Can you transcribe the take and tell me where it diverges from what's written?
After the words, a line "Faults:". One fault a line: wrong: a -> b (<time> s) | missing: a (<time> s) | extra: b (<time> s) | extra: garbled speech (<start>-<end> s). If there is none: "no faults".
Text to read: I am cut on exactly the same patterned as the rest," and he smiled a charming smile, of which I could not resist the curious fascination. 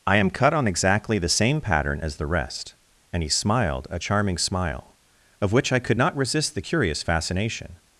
I am cut on exactly the same pattern as the rest," and he smiled a charming smile, of which I could not resist the curious fascination.
Faults:
wrong: patterned -> pattern (1.6 s)